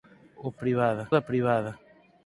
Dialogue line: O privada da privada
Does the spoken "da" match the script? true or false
true